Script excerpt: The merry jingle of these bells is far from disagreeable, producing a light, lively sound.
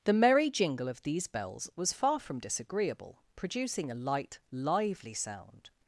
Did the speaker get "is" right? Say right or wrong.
wrong